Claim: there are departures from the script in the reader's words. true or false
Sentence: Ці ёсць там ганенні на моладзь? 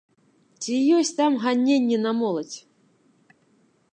false